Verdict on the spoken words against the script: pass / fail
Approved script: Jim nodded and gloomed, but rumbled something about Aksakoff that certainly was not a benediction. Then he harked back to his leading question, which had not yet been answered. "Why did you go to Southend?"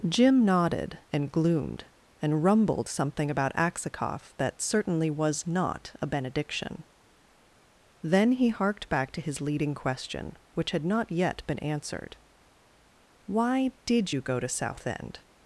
fail